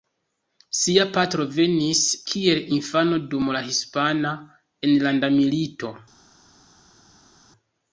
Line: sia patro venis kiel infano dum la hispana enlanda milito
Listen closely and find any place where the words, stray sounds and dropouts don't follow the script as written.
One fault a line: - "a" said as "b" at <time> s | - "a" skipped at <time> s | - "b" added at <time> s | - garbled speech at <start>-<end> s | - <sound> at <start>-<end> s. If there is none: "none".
none